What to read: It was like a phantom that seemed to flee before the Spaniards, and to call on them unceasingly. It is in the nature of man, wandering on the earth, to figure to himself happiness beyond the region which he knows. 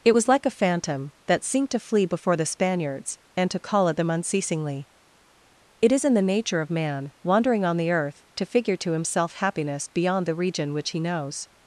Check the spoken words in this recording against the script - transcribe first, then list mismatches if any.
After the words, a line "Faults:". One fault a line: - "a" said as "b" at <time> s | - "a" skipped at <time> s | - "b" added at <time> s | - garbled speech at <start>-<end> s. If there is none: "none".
It was like a phantom that seemed to flee before the Spaniards, and to call at them unceasingly. It is in the nature of man, wandering on the earth, to figure to himself happiness beyond the region which he knows.
Faults:
- "on" said as "at" at 3.9 s